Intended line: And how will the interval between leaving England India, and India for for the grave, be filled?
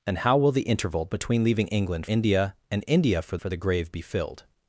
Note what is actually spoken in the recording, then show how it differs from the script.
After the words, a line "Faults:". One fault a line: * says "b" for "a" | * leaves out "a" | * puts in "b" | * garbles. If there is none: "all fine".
And how will the interval between leaving England India, and India for for the grave, be filled?
Faults:
all fine